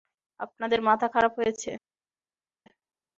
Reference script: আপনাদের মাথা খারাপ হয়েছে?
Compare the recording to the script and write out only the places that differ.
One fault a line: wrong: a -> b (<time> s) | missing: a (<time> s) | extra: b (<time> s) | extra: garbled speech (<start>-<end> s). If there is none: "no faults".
no faults